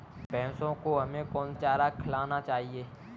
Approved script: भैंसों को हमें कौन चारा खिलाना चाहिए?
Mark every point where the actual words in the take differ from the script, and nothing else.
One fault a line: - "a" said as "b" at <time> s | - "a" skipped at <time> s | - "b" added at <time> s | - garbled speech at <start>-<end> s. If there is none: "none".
none